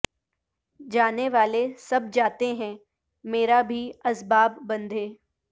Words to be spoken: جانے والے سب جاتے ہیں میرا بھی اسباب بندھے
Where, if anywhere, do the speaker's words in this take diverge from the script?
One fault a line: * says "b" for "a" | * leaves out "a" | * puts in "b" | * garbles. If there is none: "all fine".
all fine